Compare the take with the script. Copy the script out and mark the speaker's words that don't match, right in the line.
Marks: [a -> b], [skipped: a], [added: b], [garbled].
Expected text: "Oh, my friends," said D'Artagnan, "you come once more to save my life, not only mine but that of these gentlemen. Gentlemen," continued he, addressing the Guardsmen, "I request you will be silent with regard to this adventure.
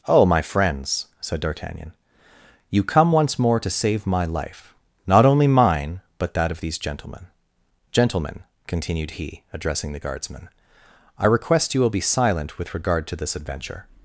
"Oh, my friends," said D'Artagnan, "you come once more to save my life, not only mine but that of these gentlemen. Gentlemen," continued he, addressing the Guardsmen, "I request you will be silent with regard to this adventure.